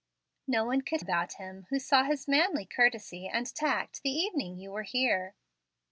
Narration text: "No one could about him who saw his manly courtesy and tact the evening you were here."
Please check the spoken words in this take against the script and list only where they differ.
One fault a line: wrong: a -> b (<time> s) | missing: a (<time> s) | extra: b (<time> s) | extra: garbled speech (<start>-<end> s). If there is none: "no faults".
no faults